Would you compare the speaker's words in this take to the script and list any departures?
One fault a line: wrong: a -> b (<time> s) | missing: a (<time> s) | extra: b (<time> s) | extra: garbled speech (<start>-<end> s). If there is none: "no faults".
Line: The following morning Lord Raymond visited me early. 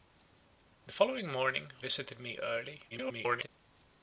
missing: Lord Raymond (1.7 s)
extra: garbled speech (2.9-3.5 s)